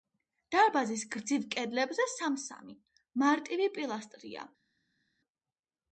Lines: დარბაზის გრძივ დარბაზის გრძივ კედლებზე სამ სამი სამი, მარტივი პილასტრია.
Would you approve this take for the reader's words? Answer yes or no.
no